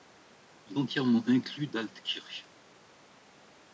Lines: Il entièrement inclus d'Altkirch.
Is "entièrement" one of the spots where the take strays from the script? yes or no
no